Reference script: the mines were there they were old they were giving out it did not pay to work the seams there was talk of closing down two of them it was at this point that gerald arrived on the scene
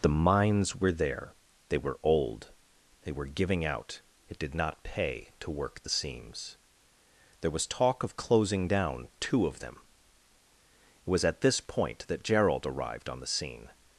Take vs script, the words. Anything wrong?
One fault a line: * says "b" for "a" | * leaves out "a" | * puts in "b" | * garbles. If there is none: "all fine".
all fine